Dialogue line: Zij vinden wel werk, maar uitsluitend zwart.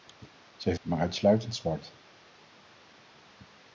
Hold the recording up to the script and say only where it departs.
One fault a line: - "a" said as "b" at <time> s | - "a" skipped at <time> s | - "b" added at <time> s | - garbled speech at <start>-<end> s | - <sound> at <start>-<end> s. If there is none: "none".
- "vinden wel werk" skipped at 0.8 s